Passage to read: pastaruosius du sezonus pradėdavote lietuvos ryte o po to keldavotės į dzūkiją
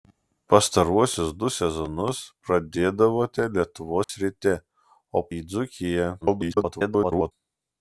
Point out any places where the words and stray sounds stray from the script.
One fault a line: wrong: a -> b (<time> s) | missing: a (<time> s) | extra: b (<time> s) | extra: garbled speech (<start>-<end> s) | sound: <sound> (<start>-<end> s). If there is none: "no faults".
sound: dropout (4.0-4.1 s)
missing: po to keldavotės (5.3 s)
extra: garbled speech (6.2-7.3 s)